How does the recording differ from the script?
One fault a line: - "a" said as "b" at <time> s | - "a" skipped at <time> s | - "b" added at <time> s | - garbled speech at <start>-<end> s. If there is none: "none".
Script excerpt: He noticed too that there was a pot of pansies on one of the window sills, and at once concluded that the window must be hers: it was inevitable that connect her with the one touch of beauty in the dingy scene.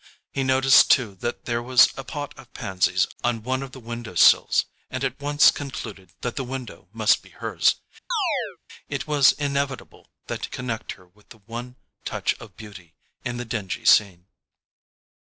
none